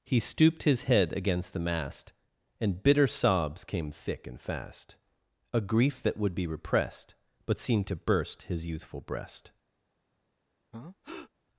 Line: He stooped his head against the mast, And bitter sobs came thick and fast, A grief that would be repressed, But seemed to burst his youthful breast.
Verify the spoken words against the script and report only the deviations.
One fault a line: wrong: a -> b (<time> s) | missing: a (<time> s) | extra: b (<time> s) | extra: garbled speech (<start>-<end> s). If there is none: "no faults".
no faults